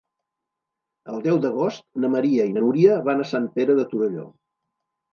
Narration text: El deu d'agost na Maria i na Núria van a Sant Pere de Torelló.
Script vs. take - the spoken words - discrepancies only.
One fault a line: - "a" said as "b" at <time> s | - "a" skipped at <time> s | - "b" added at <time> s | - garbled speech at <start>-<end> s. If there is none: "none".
none